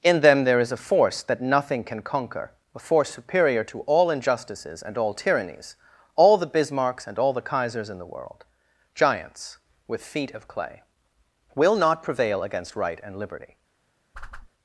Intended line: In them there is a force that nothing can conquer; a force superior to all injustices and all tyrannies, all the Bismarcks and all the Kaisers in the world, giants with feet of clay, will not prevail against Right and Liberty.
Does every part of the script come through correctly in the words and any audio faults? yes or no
no